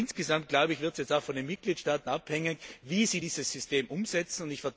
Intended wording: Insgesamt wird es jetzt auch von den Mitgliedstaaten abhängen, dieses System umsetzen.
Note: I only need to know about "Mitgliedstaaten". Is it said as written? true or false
true